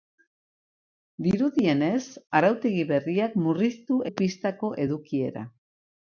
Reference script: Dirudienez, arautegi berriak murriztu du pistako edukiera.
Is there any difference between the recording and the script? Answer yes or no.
no